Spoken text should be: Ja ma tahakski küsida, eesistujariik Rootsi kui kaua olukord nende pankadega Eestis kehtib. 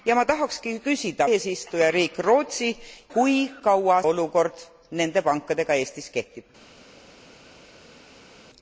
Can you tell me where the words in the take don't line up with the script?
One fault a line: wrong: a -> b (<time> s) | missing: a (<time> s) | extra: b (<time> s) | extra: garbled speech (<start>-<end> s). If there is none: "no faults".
no faults